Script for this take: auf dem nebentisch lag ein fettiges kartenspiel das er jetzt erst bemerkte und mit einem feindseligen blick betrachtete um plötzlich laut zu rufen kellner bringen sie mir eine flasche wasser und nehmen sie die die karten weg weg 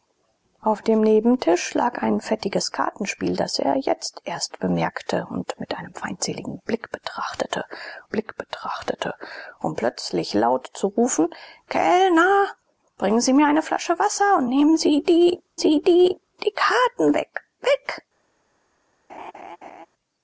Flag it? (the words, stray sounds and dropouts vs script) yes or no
yes